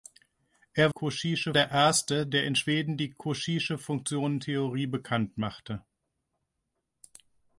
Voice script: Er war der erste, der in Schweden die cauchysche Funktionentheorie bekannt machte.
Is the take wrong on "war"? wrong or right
wrong